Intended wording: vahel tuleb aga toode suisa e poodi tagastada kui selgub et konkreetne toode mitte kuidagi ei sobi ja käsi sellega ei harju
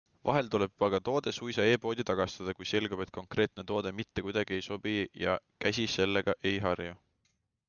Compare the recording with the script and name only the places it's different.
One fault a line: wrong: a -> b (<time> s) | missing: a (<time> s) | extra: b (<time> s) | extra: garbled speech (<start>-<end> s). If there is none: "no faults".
no faults